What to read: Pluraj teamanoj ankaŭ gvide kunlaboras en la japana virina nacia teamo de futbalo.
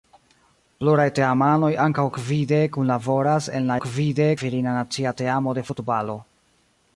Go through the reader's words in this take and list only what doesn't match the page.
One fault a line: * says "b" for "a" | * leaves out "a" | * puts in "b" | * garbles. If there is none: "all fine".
* says "gvide" for "japana"